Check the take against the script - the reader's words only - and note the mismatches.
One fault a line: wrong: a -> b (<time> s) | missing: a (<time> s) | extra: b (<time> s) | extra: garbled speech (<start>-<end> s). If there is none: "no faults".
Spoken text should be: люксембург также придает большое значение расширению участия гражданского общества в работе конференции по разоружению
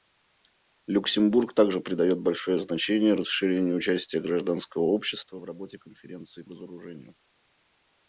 missing: по (6.4 s)